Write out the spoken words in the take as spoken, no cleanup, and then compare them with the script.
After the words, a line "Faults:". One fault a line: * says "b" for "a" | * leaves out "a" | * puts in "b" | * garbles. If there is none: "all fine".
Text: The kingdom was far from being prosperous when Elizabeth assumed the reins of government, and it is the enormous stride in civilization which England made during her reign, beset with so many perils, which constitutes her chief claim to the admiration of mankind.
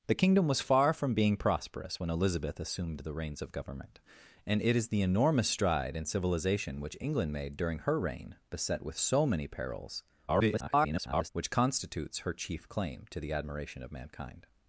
The kingdom was far from being prosperous when Elizabeth assumed the reins of government, and it is the enormous stride in civilization which England made during her reign, beset with so many perils, [garbled] which constitutes her chief claim to the admiration of mankind.
Faults:
* garbles